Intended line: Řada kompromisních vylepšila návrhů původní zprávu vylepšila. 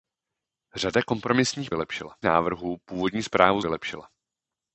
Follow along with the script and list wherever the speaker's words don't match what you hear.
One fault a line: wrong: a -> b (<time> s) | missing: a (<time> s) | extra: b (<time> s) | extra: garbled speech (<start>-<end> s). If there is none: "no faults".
no faults